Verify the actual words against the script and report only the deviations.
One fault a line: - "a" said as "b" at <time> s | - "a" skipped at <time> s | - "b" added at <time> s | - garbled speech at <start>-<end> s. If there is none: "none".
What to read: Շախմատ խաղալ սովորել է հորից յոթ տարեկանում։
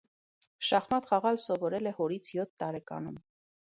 none